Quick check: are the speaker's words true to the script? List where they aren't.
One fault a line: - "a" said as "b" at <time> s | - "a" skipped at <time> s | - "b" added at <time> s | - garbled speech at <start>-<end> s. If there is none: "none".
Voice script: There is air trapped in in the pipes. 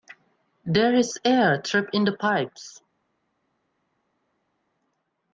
- "in" skipped at 2.0 s